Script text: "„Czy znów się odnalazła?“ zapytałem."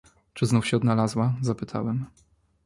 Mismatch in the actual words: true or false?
false